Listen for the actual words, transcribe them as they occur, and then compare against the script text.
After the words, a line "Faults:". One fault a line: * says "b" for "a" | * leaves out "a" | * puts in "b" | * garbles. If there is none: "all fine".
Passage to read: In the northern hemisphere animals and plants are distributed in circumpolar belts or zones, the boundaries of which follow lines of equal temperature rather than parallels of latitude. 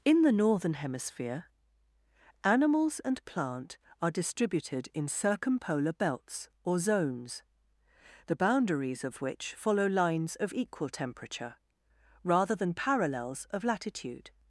In the northern hemisphere animals and plant are distributed in circumpolar belts or zones, the boundaries of which follow lines of equal temperature rather than parallels of latitude.
Faults:
* says "plant" for "plants"